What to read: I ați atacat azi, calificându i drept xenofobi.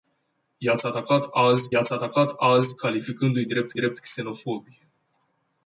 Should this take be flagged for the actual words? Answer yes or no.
yes